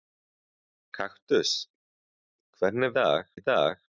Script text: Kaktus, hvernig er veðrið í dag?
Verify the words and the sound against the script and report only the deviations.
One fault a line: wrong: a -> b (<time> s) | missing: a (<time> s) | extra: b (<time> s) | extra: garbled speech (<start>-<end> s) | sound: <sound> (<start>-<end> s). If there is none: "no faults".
wrong: veðrið -> dag (3.0 s)